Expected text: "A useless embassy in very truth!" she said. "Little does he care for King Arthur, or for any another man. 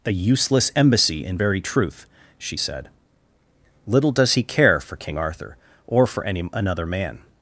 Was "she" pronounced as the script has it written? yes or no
yes